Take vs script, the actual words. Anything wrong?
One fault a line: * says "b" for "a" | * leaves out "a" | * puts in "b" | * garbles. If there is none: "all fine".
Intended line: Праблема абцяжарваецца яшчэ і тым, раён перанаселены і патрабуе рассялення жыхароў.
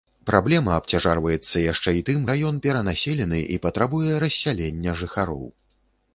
all fine